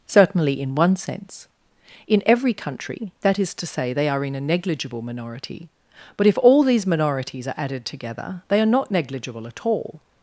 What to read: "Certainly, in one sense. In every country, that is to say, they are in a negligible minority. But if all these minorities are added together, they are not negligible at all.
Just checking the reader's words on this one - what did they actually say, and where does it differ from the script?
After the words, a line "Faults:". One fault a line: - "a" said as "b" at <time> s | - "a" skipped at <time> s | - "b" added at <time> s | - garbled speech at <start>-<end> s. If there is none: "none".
"Certainly, in one sense. In every country, that is to say, they are in a negligible minority. But if all these minorities are added together, they are not negligible at all.
Faults:
none